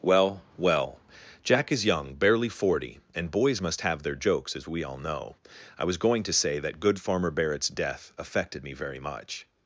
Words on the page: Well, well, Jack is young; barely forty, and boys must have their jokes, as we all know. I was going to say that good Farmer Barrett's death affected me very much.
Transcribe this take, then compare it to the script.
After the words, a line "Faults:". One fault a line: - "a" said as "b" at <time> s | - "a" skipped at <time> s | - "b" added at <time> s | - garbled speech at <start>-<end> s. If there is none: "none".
Well, well, Jack is young; barely forty, and boys must have their jokes, as we all know. I was going to say that good Farmer Barrett's death affected me very much.
Faults:
none